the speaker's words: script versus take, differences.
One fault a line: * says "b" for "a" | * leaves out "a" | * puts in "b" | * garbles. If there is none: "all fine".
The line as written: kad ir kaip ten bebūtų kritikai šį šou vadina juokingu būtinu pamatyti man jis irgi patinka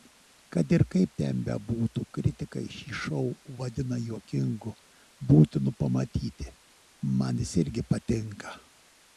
all fine